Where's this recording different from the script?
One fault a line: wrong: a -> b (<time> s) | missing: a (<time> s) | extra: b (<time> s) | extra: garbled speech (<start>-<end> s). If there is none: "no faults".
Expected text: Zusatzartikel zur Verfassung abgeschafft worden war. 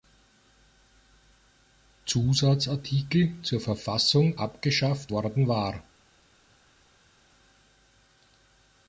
no faults